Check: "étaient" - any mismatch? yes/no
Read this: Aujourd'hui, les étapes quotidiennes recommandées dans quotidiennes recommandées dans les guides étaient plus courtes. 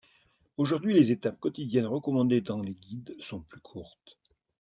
yes